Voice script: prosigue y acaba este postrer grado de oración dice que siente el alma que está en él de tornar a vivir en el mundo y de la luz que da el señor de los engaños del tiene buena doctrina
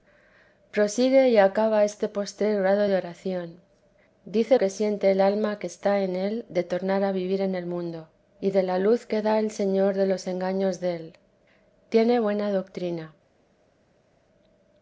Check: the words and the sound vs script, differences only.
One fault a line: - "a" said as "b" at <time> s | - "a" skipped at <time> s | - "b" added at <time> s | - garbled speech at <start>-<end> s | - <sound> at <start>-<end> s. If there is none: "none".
none